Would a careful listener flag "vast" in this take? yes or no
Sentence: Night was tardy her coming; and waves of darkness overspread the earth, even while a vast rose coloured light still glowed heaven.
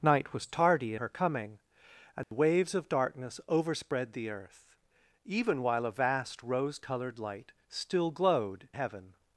no